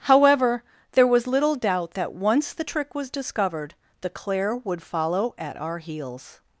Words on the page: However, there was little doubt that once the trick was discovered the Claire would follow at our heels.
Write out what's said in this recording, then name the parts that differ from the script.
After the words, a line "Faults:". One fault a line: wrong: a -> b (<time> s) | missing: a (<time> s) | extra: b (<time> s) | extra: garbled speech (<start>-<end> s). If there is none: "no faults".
However, there was little doubt that once the trick was discovered the Claire would follow at our heels.
Faults:
no faults